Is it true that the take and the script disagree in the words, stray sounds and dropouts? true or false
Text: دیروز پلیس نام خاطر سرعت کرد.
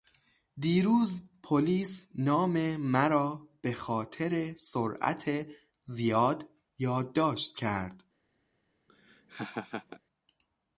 true